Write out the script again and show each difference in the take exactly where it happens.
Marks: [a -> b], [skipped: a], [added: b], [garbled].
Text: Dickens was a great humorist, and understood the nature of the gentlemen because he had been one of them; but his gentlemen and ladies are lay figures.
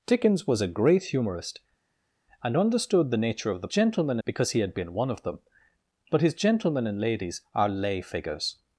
Dickens was a great humorist, and understood the nature of the gentlemen because he had been one of them; but his gentlemen and ladies are lay figures.